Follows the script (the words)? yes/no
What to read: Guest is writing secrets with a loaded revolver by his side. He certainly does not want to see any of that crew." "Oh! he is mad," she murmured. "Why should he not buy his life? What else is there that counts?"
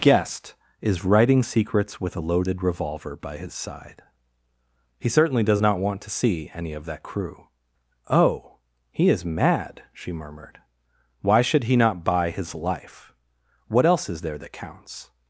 yes